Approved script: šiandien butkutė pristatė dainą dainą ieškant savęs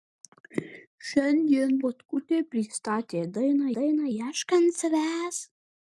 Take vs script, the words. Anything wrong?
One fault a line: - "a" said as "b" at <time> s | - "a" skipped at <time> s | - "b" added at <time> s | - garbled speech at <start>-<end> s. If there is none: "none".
none